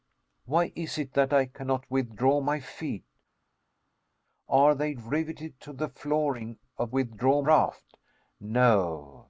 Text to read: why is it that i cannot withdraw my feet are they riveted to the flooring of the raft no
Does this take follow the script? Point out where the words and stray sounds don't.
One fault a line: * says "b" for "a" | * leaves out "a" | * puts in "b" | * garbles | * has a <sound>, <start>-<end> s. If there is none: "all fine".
* says "withdraw" for "the"